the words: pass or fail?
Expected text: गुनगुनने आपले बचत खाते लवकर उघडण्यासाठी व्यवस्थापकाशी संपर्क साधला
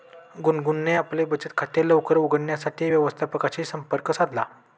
pass